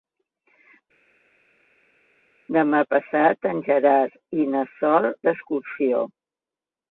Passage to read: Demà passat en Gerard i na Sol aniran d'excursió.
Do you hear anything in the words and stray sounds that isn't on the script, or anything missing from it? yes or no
yes